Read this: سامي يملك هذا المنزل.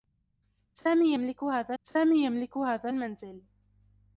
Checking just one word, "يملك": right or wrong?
right